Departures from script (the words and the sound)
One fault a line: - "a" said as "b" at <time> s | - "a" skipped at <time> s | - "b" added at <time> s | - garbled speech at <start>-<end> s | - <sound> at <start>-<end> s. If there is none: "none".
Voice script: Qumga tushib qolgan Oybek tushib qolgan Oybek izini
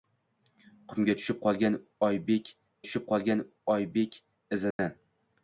- dropout at 4.7-4.8 s